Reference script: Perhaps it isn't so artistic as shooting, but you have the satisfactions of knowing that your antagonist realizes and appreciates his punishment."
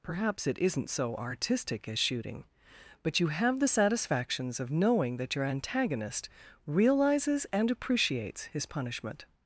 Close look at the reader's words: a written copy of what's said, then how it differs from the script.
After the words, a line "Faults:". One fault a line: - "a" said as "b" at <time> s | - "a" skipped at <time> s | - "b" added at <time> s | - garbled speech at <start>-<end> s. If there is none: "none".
Perhaps it isn't so artistic as shooting, but you have the satisfactions of knowing that your antagonist realizes and appreciates his punishment."
Faults:
none